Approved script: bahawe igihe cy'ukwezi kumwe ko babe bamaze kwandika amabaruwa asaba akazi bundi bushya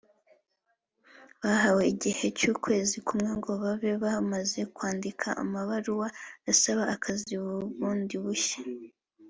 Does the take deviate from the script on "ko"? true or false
true